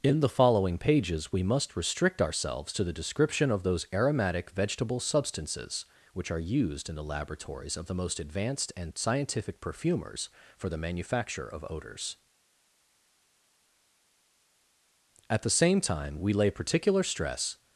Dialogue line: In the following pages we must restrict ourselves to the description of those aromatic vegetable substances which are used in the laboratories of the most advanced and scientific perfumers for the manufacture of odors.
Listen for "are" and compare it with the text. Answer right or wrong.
right